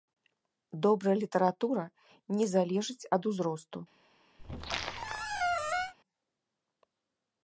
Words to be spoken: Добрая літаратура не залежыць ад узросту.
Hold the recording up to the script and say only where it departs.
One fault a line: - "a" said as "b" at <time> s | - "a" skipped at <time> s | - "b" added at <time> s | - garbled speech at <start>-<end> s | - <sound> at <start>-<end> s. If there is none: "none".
- squeak at 4.4-5.9 s